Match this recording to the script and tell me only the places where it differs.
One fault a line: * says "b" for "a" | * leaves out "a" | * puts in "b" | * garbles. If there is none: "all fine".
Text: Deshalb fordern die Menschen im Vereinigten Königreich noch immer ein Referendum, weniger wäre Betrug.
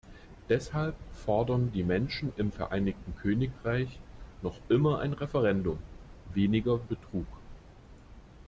* leaves out "wäre"